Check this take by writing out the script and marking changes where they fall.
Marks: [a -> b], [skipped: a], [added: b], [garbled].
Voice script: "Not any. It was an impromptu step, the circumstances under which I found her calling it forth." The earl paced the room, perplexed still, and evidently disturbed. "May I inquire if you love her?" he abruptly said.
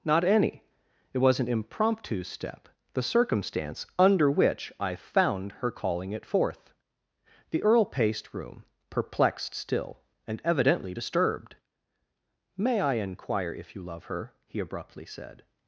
"Not any. It was an impromptu step, the [circumstances -> circumstance] under which I found her calling it forth." The earl paced [skipped: the] room, perplexed still, and evidently disturbed. "May I inquire if you love her?" he abruptly said.